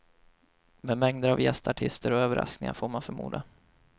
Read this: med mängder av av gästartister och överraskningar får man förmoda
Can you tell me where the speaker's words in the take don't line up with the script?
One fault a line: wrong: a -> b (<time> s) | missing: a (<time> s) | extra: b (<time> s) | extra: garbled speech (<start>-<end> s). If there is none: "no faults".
missing: av (1.4 s)